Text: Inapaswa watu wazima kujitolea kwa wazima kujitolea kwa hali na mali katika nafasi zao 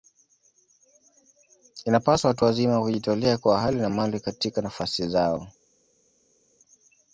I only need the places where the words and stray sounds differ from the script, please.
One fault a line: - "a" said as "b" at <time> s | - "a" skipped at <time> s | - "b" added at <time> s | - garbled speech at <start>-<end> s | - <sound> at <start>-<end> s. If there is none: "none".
- "wazima kujitolea kwa" skipped at 3.6 s